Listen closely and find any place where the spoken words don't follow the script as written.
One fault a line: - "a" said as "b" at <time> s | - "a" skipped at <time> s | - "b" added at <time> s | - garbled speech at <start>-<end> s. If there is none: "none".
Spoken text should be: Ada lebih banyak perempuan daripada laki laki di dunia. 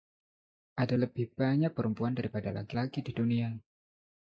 none